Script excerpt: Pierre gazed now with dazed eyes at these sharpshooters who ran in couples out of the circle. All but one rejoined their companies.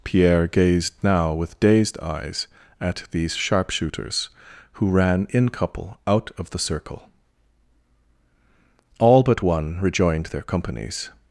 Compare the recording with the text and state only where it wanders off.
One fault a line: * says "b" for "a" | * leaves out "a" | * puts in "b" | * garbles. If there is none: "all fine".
* says "couple" for "couples"